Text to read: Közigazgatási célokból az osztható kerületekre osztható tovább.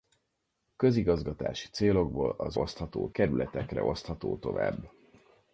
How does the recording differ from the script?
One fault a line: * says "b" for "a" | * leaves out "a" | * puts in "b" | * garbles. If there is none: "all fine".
all fine